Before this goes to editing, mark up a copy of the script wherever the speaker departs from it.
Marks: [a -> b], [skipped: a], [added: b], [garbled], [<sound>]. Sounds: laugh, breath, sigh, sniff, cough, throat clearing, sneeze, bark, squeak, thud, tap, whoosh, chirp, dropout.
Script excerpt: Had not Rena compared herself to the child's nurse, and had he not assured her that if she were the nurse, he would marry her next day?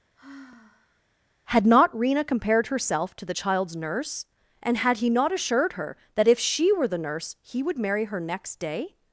[sigh] Had not Rena compared herself to the child's nurse, and had he not assured her that if she were the nurse, he would marry her next day?